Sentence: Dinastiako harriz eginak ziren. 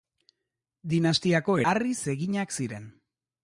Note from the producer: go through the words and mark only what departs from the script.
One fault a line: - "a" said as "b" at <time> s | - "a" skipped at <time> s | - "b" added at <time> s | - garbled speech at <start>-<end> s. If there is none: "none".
none